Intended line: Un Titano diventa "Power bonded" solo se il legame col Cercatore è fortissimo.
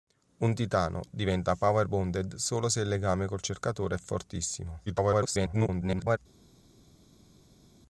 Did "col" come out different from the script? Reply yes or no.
no